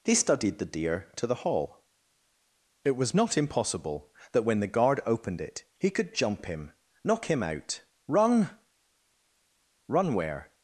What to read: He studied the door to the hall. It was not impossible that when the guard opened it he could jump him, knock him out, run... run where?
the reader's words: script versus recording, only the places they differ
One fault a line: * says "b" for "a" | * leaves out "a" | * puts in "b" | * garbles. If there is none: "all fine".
* says "deer" for "door"